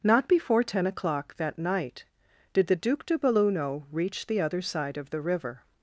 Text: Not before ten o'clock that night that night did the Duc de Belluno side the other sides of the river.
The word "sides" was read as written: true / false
false